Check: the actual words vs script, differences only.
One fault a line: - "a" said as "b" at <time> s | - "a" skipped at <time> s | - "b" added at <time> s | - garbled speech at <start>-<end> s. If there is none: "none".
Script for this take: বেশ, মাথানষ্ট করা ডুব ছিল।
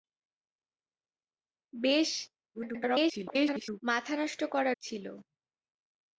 - garbled speech at 2.5-3.8 s
- "ডুব" skipped at 4.7 s